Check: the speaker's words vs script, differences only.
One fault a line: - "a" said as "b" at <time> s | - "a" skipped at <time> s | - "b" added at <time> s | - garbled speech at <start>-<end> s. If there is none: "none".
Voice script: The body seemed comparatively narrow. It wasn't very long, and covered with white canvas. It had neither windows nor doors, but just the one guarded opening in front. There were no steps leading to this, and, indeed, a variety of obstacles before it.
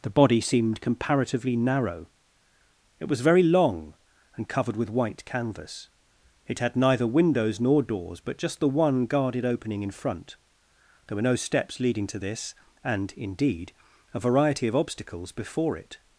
- "wasn't" said as "was" at 3.1 s